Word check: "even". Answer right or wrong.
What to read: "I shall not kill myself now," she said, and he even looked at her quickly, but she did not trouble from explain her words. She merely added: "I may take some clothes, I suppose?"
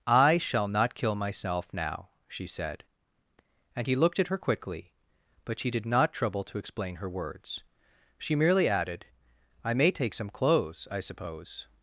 wrong